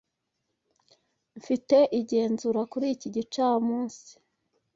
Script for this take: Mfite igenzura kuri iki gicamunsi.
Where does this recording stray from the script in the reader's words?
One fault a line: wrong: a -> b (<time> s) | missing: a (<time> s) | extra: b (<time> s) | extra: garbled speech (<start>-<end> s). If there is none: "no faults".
no faults